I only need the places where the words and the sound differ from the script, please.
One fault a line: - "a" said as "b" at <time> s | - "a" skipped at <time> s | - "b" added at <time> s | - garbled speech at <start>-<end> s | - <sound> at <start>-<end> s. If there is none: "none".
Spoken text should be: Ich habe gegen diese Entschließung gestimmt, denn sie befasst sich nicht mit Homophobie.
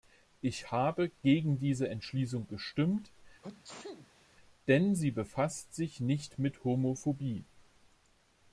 - sneeze at 3.4-4.4 s